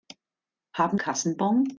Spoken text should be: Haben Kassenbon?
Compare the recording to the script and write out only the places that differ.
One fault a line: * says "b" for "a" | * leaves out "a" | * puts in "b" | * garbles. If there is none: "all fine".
all fine